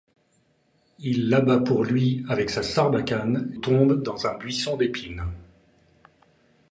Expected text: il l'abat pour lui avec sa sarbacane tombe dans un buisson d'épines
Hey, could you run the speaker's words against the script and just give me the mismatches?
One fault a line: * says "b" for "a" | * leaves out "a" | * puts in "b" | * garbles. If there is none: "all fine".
all fine